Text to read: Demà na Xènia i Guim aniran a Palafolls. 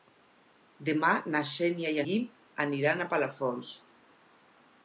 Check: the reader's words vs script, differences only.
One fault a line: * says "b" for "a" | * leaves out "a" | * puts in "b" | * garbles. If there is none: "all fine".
all fine